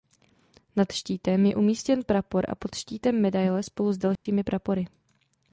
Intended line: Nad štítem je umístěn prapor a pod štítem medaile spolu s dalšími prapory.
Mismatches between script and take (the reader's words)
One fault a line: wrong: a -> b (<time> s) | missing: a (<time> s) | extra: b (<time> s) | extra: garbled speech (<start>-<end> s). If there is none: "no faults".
no faults